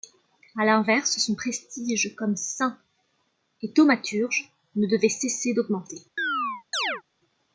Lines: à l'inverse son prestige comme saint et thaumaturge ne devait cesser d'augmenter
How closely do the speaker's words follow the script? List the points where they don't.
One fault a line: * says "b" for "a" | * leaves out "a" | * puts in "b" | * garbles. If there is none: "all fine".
all fine